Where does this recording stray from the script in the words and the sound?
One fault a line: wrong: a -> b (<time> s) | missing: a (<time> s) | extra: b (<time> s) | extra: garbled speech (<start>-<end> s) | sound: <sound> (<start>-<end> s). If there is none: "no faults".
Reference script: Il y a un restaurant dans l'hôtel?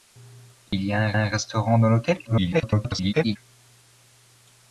sound: dropout (0.7-0.7 s)
extra: un (1.2 s)
extra: garbled speech (2.2-3.4 s)